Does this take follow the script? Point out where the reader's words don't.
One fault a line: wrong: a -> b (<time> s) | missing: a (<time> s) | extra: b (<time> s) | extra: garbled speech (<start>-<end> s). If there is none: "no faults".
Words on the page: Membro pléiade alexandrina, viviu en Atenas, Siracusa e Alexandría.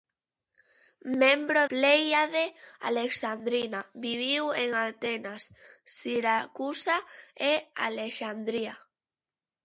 no faults